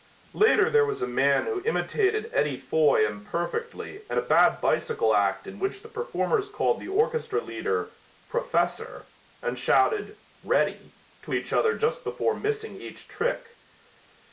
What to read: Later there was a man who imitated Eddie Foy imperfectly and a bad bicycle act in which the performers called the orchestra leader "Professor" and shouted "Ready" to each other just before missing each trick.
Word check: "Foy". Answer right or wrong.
right